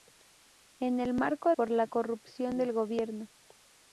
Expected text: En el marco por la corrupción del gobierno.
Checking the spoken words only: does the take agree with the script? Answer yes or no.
yes